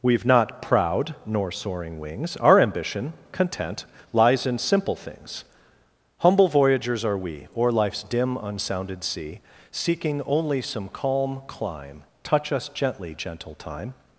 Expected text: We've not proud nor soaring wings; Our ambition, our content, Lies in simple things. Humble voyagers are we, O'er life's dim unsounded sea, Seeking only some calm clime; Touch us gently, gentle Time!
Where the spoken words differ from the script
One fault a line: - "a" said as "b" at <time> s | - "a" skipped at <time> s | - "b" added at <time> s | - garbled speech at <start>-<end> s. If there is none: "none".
- "our" skipped at 3.1 s